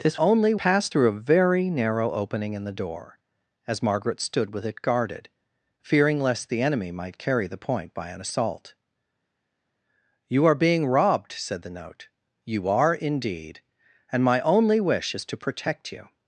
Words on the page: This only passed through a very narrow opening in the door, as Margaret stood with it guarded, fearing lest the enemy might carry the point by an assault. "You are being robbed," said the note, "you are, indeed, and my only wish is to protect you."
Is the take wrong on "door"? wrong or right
right